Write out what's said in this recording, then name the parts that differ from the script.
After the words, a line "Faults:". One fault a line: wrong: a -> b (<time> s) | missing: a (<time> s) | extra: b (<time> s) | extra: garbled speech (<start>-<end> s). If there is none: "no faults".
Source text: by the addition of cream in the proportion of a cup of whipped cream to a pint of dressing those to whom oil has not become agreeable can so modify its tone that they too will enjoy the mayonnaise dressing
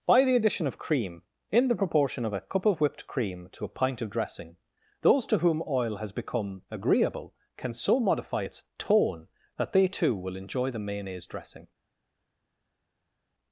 by the addition of cream in the proportion of a cup of whipped cream to a pint of dressing those to whom oil has become agreeable can so modify its tone that they too will enjoy the mayonnaise dressing
Faults:
missing: not (6.1 s)